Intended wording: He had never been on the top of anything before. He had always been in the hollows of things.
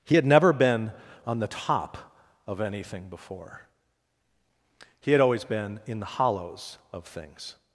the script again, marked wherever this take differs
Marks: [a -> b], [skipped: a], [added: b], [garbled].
He had never been on the top of anything before. He had always been in the hollows of things.